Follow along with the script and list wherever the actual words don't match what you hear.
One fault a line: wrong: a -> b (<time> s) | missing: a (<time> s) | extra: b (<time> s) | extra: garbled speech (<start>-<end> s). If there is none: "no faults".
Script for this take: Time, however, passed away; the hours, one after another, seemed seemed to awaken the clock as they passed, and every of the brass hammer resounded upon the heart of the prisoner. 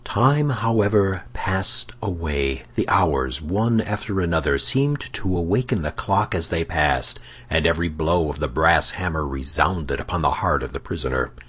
missing: seemed (5.1 s)
extra: blow (7.9 s)